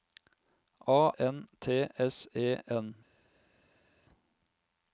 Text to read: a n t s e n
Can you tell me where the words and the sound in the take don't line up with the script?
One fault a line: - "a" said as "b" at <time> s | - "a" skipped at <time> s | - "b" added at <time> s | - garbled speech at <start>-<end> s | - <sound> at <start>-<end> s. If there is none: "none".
none